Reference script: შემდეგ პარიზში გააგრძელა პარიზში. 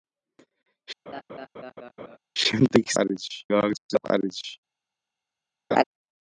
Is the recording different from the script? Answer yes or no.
no